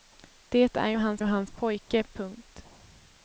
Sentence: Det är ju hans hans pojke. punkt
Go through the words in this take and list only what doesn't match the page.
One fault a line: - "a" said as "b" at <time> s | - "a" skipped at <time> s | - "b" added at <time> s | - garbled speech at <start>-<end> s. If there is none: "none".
none